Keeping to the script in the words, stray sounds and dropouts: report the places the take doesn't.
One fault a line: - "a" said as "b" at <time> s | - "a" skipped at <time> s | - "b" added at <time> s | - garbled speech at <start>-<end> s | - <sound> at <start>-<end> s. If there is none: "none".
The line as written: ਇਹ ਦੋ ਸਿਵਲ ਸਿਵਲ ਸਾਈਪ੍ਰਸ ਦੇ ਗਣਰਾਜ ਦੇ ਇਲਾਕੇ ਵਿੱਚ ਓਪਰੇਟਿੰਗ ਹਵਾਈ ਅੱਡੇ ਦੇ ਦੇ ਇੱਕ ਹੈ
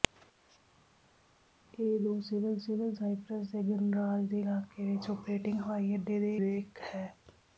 none